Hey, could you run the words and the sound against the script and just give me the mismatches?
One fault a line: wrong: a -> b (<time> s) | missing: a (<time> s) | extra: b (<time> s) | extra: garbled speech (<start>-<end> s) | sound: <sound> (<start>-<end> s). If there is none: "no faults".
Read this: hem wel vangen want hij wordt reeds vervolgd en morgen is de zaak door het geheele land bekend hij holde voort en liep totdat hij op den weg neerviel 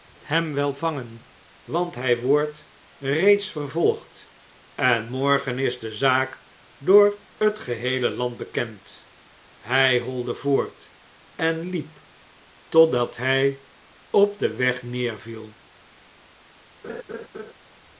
sound: laugh (16.8-17.5 s)